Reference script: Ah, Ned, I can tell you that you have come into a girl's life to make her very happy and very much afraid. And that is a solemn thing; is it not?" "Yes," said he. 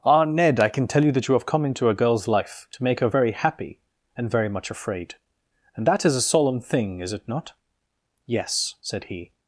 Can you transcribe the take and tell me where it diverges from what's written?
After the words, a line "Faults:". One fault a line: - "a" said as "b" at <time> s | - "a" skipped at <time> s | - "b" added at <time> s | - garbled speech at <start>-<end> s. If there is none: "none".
Ah, Ned, I can tell you that you have come into a girl's life to make her very happy and very much afraid. And that is a solemn thing; is it not?" "Yes," said he.
Faults:
none